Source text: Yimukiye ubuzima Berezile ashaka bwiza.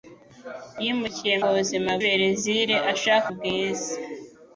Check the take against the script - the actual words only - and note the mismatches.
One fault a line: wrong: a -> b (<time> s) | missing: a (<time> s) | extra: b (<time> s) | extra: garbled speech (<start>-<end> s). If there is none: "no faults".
no faults